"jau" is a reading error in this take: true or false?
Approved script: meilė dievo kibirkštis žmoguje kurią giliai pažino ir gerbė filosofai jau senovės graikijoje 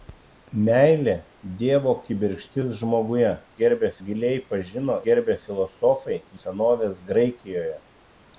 true